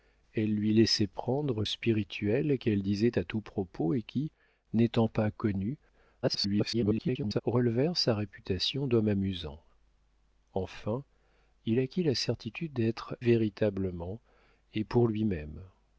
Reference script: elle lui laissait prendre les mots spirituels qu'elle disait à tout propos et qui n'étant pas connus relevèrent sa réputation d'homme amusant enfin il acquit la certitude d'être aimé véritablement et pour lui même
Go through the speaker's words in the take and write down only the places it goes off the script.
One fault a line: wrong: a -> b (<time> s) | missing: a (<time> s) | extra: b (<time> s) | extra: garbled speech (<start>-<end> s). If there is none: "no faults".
missing: les mots (1.6 s)
extra: garbled speech (6.2-7.4 s)
missing: aimé (13.2 s)